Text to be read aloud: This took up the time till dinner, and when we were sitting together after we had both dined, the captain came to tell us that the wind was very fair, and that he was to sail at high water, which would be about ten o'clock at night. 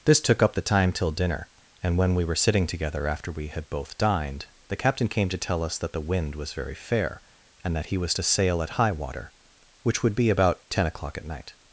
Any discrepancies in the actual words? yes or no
no